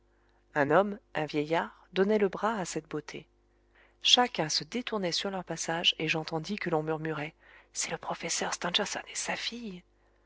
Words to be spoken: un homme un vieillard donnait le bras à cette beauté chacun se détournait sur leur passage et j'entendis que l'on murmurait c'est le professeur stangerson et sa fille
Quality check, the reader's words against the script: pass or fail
pass